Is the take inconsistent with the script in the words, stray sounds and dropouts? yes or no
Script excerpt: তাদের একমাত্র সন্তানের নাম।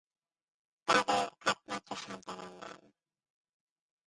no